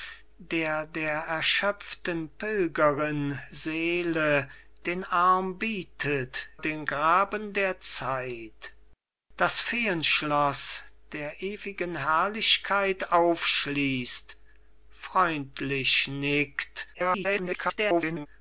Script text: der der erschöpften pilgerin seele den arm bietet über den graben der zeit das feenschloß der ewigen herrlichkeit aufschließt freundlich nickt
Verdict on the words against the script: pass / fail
fail